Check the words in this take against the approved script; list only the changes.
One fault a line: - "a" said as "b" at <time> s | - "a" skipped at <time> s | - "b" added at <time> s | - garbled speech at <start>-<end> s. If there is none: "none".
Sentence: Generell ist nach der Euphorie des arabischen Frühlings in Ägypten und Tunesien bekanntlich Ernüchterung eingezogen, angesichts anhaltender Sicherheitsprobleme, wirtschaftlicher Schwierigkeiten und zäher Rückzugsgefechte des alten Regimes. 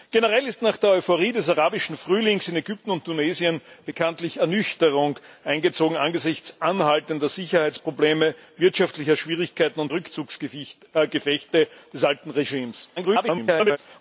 - "zäher" skipped at 9.9 s
- garbled speech at 13.0-13.8 s